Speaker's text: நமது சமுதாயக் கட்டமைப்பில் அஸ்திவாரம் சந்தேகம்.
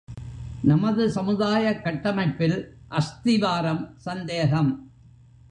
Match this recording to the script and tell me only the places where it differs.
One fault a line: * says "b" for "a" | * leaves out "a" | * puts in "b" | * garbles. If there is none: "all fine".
all fine